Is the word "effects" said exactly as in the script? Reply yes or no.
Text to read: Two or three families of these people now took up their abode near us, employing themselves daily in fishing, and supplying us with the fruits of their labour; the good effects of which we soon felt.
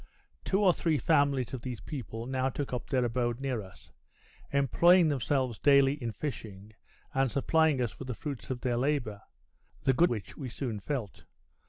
no